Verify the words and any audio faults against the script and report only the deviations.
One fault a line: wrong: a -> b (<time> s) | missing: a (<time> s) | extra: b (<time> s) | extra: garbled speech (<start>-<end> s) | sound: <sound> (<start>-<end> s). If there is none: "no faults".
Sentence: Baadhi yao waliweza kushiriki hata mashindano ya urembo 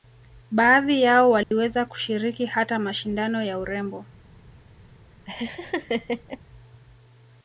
sound: dropout (1.4-1.5 s)
sound: laugh (5.3-6.4 s)